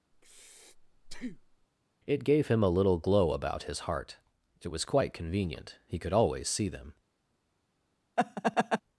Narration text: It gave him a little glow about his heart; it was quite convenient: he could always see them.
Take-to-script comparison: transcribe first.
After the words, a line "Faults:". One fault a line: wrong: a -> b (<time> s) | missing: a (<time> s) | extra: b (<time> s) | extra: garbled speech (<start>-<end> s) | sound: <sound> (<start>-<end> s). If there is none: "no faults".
It gave him a little glow about his heart; it was quite convenient: he could always see them.
Faults:
sound: breath (0.1-1.7 s)
sound: laugh (8.2-8.8 s)